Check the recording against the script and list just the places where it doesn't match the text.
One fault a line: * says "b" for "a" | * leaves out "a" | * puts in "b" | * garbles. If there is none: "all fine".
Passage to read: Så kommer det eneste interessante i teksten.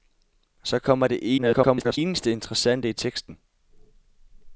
* garbles